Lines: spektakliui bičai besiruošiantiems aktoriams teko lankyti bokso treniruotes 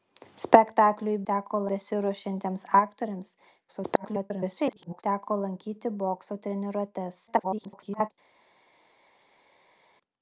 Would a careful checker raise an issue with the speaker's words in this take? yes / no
yes